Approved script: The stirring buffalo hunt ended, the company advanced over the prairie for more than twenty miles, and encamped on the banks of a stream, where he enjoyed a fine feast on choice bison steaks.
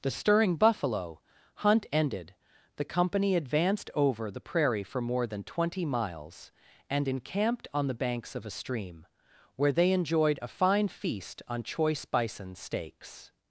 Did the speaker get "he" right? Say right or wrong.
wrong